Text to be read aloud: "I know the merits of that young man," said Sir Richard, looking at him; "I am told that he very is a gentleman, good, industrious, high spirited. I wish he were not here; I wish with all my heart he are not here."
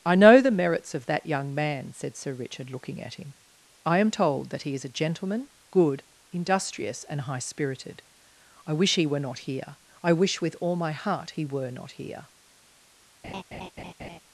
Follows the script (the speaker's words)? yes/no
no